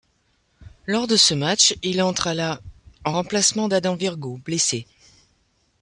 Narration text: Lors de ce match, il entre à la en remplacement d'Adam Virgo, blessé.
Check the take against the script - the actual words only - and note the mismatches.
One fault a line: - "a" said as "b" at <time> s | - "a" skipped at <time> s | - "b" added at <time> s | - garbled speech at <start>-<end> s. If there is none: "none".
none